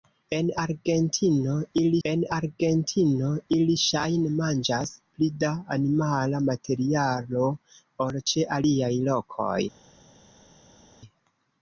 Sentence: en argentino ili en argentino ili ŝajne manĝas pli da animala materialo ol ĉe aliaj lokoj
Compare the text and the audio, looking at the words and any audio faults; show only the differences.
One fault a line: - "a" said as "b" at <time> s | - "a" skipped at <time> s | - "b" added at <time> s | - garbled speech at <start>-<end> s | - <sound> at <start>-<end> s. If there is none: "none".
none